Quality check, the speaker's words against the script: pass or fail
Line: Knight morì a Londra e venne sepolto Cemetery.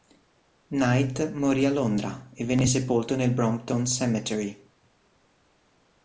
fail